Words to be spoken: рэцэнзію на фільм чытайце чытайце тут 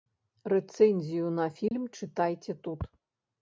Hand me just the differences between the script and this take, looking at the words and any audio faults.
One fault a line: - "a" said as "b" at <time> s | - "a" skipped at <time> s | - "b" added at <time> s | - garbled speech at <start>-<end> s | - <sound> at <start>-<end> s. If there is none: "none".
- dropout at 1.7-1.7 s
- "чытайце" skipped at 2.6 s